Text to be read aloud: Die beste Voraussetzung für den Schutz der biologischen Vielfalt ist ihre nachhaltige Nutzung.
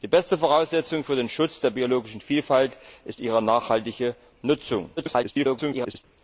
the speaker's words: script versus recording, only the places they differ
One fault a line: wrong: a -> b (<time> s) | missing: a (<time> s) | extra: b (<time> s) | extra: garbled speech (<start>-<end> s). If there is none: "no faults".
extra: garbled speech (5.0-6.0 s)